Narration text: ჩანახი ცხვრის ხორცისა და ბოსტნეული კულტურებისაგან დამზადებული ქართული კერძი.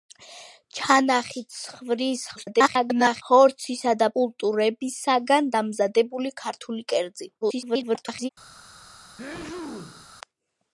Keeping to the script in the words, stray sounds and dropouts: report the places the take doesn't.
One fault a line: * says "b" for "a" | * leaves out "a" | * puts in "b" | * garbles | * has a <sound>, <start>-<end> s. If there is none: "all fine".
* garbles
* leaves out "ბოსტნეული"
* garbles
* has a sneeze, 9.2-10.1 s